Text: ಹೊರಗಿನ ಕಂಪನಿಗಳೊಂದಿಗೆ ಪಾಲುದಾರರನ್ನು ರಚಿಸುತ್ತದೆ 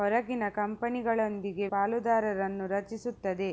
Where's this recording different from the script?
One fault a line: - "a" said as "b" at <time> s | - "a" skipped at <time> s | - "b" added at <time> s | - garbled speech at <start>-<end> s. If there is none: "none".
none